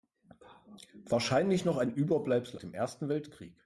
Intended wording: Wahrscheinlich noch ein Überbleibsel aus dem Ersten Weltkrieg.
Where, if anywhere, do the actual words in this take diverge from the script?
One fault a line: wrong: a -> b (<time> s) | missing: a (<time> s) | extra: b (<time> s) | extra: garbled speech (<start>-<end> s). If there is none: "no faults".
missing: aus (2.6 s)